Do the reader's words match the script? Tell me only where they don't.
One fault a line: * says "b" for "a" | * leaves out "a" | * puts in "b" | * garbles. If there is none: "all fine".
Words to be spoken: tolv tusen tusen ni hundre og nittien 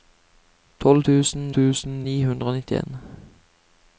all fine